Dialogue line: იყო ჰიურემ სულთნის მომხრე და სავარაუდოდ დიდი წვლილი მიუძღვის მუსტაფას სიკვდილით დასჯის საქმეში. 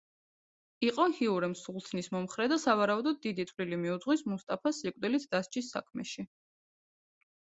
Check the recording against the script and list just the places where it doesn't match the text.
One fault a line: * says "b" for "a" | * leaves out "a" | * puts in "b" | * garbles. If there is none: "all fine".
all fine